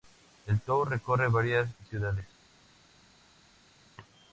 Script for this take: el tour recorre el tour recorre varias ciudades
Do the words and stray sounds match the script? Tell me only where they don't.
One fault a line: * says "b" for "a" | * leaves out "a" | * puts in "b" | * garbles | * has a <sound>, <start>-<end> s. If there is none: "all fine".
* leaves out "el tour recorre"